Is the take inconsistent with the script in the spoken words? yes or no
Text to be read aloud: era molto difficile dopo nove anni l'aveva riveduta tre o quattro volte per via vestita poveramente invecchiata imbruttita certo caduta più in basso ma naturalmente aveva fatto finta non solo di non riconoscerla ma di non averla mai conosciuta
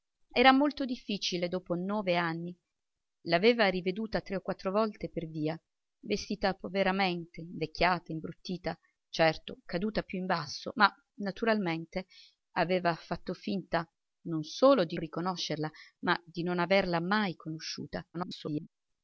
yes